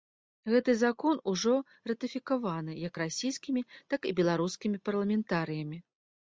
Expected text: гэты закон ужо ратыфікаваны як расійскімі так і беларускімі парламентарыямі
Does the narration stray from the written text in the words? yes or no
no